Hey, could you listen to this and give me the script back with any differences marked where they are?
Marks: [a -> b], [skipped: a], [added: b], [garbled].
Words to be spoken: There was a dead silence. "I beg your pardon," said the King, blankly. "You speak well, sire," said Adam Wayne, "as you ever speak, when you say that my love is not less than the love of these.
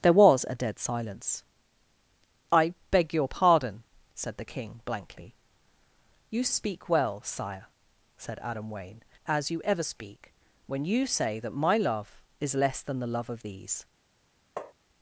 There was a dead silence. "I beg your pardon," said the King, blankly. "You speak well, sire," said Adam Wayne, "as you ever speak, when you say that my love is [skipped: not] less than the love of these.